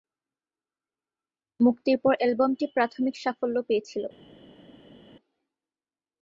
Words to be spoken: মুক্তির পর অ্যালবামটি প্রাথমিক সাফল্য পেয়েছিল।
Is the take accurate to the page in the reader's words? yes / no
yes